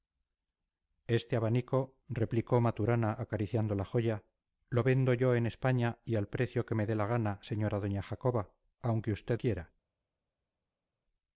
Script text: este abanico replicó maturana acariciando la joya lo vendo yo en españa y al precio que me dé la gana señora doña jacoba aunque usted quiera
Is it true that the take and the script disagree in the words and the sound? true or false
false